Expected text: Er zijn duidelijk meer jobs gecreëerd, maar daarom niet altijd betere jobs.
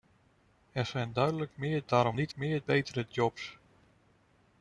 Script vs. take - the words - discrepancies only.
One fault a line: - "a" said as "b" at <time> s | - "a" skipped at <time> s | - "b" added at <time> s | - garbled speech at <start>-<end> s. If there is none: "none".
- "jobs gecreëerd maar" skipped at 1.8 s
- "altijd" said as "meer" at 2.3 s